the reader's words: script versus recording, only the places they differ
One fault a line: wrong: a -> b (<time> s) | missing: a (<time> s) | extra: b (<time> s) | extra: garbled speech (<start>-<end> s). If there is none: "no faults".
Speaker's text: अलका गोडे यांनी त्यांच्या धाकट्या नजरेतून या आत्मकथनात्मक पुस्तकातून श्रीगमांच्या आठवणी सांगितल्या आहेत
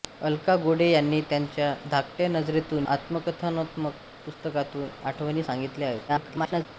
missing: या (2.9 s)
missing: श्रीगमांच्या (4.9 s)
extra: garbled speech (6.1-6.7 s)